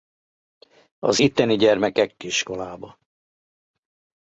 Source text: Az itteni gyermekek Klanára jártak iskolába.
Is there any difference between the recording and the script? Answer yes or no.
yes